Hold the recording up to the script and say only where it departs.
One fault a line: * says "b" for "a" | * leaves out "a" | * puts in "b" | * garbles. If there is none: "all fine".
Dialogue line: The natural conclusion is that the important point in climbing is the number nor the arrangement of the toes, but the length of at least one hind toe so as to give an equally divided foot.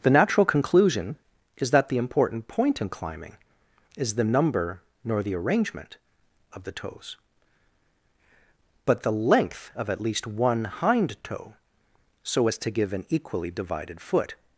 all fine